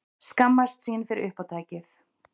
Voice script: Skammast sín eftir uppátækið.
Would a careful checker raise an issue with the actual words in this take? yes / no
yes